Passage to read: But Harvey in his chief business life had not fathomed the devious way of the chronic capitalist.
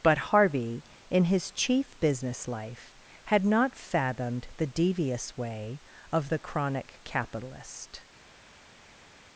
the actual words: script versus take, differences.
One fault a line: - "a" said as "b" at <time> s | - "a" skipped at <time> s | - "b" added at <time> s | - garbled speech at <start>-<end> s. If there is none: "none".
none